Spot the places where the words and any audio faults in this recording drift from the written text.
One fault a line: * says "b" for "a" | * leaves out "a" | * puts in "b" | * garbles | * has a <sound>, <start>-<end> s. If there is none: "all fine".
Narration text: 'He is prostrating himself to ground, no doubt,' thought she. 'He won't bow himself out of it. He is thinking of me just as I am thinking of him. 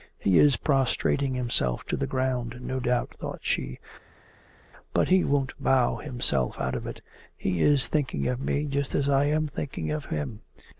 * puts in "the"
* puts in "But"